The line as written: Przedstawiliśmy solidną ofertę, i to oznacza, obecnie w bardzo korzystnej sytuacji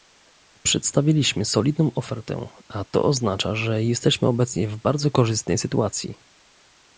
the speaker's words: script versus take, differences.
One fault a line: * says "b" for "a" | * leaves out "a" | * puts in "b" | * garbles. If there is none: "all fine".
* says "a" for "i"
* puts in "że jesteśmy"